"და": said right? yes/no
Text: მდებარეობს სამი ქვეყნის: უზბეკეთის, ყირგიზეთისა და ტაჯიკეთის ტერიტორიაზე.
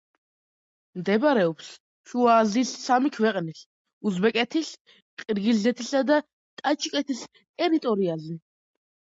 yes